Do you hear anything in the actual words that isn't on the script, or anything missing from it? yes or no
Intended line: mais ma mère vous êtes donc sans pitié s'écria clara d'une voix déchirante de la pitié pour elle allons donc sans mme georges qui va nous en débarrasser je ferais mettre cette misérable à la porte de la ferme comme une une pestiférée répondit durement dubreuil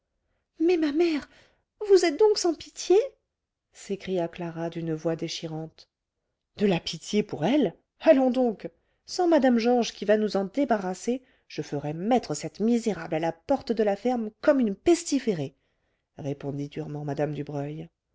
yes